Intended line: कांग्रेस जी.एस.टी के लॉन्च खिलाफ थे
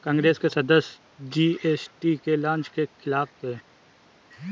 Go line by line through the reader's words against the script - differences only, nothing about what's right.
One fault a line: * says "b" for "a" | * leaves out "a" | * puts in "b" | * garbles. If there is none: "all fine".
* puts in "के सदस्य"
* puts in "के"